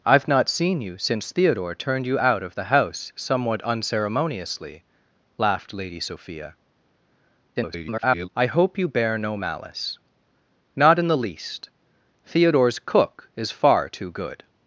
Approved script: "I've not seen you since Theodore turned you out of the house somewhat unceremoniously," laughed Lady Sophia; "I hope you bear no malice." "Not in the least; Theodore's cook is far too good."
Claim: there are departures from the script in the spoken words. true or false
true